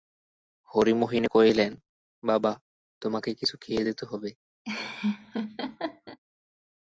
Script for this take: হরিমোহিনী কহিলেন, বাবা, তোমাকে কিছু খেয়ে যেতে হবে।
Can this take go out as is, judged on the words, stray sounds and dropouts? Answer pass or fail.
fail